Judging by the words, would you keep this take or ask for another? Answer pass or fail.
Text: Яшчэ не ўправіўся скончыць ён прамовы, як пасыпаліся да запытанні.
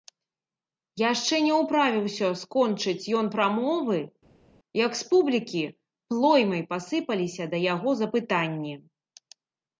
fail